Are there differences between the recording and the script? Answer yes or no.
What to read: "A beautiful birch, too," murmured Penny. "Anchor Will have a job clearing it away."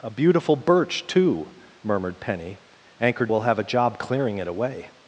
no